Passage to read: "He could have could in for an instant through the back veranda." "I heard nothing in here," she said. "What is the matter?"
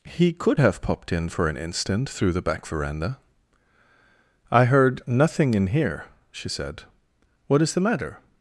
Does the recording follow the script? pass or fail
fail